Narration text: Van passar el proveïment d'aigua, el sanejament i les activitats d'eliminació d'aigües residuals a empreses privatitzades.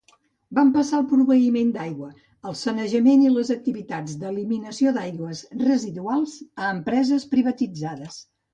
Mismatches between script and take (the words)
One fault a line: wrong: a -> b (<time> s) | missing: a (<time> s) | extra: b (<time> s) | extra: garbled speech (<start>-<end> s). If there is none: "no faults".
no faults